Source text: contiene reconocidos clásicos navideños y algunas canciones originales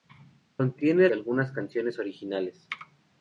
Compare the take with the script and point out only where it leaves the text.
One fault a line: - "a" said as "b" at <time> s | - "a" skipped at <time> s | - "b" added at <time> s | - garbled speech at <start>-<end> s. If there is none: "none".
- "reconocidos clásicos navideños" skipped at 1.1 s